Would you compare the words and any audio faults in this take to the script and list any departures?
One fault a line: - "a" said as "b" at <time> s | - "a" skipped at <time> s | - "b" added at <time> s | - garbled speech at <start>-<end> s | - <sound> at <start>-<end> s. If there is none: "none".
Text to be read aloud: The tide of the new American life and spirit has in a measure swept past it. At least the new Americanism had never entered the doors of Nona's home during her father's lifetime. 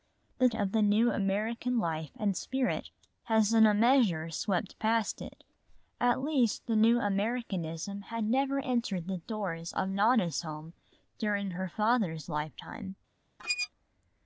- "tide" skipped at 0.5 s
- squeak at 13.4-13.7 s